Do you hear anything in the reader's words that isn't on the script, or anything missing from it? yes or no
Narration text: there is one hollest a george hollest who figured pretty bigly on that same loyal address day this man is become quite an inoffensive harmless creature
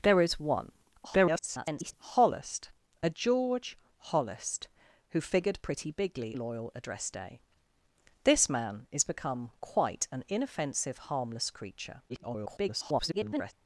yes